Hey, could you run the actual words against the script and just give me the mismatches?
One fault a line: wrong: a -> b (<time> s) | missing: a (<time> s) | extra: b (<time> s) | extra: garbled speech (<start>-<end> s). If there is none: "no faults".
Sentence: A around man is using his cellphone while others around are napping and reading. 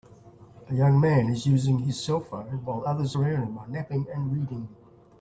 wrong: around -> young (0.7 s)
extra: him (3.5 s)